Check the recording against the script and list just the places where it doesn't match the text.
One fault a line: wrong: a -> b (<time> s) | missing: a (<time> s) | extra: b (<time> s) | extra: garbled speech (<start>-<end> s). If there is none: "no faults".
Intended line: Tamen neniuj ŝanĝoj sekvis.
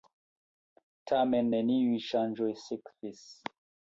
no faults